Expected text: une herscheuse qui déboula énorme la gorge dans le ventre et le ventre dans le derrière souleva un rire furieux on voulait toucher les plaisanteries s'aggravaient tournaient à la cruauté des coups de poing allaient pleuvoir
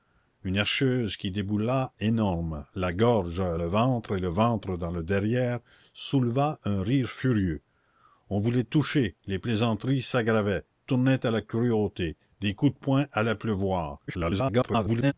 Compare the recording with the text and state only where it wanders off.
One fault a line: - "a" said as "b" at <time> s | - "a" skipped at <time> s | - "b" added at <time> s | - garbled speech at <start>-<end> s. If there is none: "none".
- "dans" skipped at 3.4 s
- garbled speech at 14.1-15.1 s